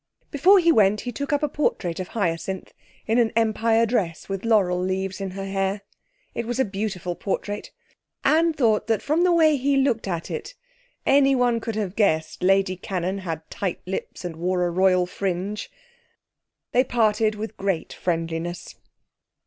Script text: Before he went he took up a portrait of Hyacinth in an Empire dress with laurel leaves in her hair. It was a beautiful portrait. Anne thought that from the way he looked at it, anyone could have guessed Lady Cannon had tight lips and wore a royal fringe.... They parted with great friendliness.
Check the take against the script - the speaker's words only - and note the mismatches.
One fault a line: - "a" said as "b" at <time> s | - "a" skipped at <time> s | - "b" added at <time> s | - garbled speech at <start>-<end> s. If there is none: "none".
none